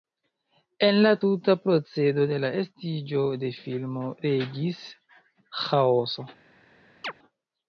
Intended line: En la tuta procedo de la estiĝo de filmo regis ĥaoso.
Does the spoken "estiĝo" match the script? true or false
true